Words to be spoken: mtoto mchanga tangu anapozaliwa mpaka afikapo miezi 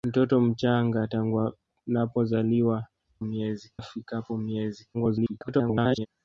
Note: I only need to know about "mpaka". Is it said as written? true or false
false